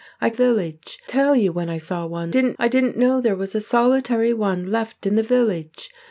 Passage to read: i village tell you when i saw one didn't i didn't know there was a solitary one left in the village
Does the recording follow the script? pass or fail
pass